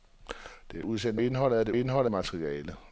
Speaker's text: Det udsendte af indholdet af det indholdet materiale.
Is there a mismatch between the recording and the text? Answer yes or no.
no